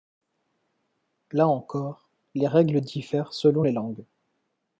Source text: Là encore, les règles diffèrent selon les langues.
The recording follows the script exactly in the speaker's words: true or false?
true